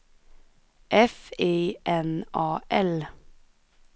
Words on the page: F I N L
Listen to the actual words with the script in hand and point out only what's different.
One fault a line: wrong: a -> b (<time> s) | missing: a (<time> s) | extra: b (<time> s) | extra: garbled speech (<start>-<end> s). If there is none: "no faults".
extra: A (2.3 s)